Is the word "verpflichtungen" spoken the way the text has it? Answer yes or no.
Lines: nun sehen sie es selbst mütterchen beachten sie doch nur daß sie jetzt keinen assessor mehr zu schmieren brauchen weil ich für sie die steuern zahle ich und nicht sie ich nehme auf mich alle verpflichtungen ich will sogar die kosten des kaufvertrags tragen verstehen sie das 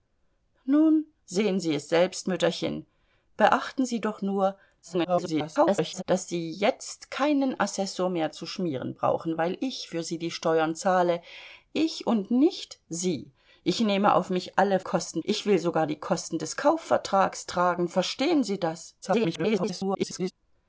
no